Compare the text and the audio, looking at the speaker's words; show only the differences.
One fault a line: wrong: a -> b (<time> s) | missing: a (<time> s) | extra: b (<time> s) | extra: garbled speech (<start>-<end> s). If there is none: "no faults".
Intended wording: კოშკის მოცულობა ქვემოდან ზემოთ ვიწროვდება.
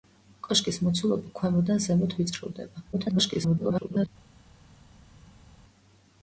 extra: garbled speech (2.9-4.1 s)